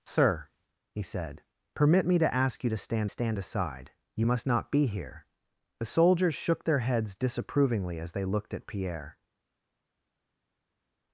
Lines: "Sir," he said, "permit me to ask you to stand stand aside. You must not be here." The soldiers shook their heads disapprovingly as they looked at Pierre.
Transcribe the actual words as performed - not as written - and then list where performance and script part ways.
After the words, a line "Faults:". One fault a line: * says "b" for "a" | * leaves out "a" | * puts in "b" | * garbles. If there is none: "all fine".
"Sir," he said, "permit me to ask you to stand stand aside. You must not be here." The soldiers shook their heads disapprovingly as they looked at Pierre.
Faults:
all fine